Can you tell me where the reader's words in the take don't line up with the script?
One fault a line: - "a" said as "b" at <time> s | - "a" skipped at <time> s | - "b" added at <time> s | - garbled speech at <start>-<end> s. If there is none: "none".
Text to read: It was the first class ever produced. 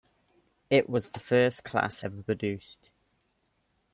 none